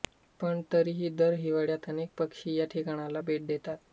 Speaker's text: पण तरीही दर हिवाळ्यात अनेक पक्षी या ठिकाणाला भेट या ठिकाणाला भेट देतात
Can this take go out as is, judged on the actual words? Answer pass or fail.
fail